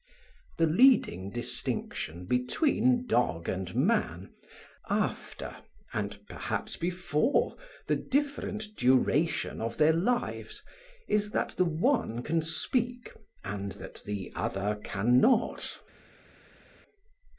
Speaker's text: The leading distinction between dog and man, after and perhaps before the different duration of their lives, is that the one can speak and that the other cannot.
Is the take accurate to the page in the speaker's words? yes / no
yes